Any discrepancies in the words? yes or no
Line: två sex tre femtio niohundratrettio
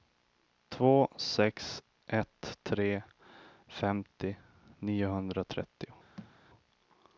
yes